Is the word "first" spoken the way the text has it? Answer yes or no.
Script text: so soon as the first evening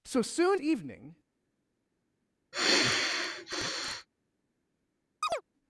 no